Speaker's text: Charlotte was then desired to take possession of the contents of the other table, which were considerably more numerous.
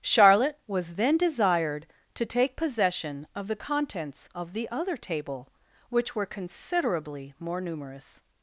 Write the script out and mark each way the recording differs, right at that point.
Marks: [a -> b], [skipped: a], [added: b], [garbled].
Charlotte was then desired to take possession of the contents of the other table, which were considerably more numerous.